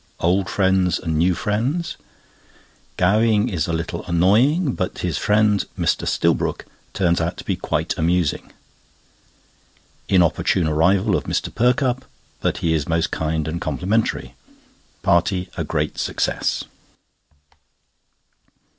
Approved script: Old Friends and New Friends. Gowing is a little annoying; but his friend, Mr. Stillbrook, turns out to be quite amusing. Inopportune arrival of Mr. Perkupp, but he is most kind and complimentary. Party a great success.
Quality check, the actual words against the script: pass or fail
pass